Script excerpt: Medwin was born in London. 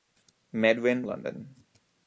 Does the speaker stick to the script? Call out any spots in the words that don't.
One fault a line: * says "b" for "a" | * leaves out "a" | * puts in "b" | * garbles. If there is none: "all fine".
* leaves out "was born in"